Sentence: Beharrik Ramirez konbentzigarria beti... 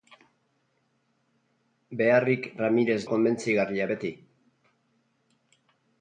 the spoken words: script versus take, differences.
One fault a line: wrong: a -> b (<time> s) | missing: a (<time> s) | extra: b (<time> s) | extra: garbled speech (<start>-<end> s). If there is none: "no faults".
no faults